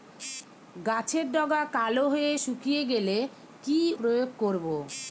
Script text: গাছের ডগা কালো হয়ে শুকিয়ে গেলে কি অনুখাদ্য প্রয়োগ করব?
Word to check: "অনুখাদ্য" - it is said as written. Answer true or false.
false